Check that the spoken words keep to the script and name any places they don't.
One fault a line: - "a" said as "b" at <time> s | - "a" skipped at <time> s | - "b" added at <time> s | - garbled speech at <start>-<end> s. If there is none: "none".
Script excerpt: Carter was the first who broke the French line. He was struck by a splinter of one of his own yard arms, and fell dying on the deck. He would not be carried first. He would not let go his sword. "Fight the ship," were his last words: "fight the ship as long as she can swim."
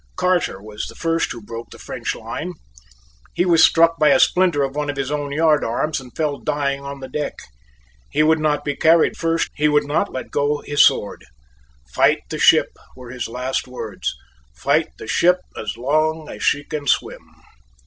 none